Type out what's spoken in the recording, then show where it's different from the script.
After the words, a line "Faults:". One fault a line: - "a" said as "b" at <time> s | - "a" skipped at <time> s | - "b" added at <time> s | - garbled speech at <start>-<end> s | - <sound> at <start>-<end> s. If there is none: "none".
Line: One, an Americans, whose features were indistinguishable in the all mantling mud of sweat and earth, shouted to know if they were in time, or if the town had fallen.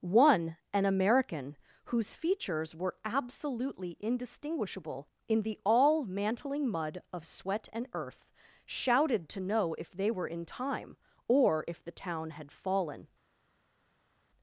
One, an American, whose features were absolutely indistinguishable in the all mantling mud of sweat and earth, shouted to know if they were in time, or if the town had fallen.
Faults:
- "Americans" said as "American" at 0.9 s
- "absolutely" added at 3.0 s